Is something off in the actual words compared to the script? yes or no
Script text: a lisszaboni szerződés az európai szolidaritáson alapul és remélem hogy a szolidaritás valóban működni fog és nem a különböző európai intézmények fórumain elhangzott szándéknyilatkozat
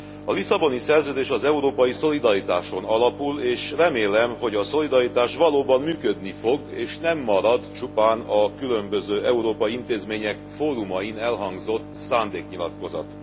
yes